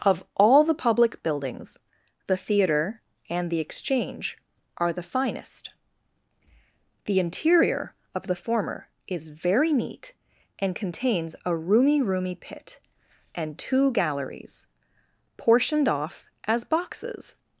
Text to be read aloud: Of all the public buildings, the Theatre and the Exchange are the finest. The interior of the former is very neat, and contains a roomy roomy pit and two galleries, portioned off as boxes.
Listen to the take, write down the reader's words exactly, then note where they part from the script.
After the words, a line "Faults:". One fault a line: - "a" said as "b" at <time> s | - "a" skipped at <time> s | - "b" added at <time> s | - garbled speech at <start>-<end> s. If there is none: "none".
Of all the public buildings, the Theatre and the Exchange are the finest. The interior of the former is very neat, and contains a roomy roomy pit and two galleries, portioned off as boxes.
Faults:
none